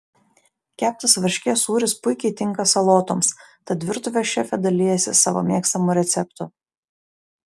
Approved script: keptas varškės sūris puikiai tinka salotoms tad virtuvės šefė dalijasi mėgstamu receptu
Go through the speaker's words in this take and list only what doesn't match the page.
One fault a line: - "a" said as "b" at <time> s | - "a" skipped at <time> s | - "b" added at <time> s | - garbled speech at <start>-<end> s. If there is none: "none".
- "savo" added at 5.2 s